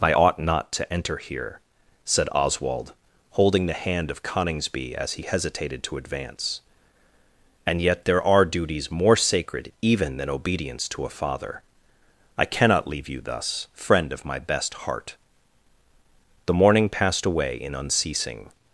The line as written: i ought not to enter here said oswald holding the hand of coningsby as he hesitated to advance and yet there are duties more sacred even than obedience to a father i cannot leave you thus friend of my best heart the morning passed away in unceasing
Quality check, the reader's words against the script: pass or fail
pass